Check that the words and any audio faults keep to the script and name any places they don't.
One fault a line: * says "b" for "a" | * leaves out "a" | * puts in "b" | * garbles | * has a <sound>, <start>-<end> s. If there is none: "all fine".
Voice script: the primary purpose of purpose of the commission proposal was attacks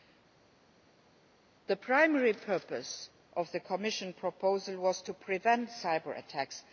* leaves out "purpose of"
* puts in "to prevent cyber"